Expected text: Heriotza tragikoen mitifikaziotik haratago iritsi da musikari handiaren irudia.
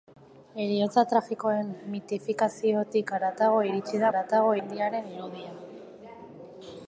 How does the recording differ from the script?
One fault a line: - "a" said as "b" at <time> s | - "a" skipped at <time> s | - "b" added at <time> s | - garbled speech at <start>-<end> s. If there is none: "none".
- "musikari" said as "haratago" at 4.1 s